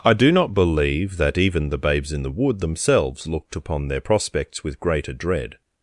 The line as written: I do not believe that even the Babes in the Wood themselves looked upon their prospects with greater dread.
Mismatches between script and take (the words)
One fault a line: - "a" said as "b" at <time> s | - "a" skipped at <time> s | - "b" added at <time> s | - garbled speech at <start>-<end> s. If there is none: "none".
none